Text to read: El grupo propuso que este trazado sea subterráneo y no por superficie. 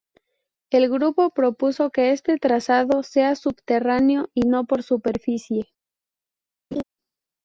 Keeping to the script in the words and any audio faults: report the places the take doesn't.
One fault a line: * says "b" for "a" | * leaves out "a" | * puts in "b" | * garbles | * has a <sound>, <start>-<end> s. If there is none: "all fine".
* has a laugh, 6.7-6.8 s